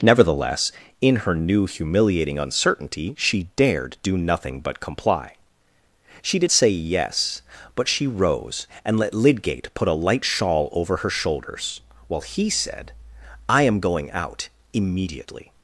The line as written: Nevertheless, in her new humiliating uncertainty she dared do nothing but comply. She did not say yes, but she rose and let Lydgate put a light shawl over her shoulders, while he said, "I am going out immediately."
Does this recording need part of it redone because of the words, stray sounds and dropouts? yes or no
yes